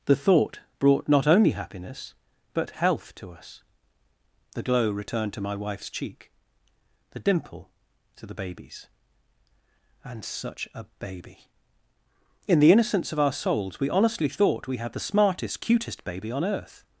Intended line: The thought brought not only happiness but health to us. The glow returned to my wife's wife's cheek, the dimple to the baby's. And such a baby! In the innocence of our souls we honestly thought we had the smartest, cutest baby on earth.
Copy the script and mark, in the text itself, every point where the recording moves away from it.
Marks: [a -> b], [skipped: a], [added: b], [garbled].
The thought brought not only happiness but health to us. The glow returned to my wife's [skipped: wife's] cheek, the dimple to the baby's. And such a baby! In the innocence of our souls we honestly thought we had the smartest, cutest baby on earth.